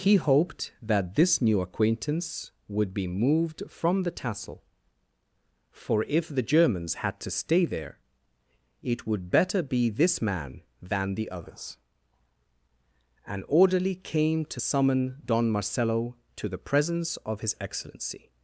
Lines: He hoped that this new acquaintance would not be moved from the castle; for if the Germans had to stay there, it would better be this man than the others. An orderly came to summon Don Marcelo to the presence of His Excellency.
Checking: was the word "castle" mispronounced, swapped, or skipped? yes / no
yes